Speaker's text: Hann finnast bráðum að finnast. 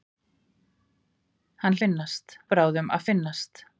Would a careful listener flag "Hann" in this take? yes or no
no